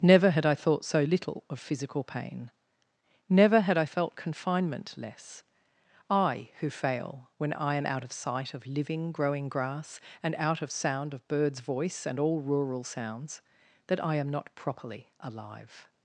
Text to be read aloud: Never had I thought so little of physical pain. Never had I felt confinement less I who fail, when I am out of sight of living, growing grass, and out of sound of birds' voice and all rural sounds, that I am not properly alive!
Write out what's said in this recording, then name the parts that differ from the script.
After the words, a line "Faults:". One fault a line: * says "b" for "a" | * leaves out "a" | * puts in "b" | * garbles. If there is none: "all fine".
Never had I thought so little of physical pain. Never had I felt confinement less I who fail, when I am out of sight of living, growing grass, and out of sound of birds' voice and all rural sounds, that I am not properly alive!
Faults:
all fine